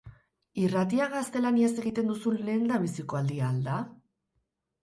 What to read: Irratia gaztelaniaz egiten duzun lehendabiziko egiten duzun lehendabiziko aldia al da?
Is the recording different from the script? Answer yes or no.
yes